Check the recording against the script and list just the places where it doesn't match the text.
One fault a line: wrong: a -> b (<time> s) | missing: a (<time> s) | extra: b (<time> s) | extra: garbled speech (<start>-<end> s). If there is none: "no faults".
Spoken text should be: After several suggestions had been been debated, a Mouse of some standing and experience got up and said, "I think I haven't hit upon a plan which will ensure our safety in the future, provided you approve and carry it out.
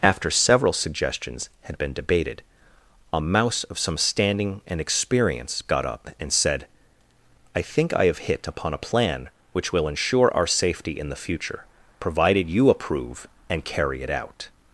missing: been (1.9 s)
wrong: haven't -> have (8.1 s)